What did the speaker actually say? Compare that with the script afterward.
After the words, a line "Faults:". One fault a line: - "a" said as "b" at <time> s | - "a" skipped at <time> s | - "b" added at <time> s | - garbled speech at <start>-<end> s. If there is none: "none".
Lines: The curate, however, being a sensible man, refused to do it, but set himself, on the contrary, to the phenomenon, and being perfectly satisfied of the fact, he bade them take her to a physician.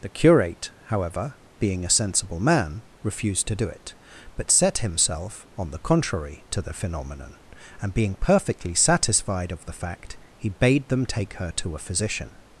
The curate, however, being a sensible man, refused to do it, but set himself, on the contrary, to the phenomenon, and being perfectly satisfied of the fact, he bade them take her to a physician.
Faults:
none